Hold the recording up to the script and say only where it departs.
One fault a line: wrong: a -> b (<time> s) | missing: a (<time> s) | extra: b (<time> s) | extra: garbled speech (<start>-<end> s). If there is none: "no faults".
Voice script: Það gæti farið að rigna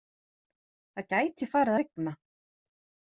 no faults